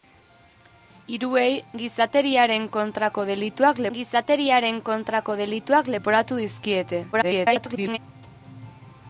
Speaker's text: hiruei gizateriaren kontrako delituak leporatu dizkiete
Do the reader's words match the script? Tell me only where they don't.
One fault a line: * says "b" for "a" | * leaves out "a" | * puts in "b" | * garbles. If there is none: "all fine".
* puts in "gizateriaren kontrako delituak"
* garbles